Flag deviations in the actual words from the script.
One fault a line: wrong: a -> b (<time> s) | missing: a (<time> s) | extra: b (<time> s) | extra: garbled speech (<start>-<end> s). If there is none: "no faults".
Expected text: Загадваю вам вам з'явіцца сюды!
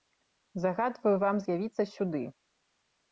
missing: вам (1.4 s)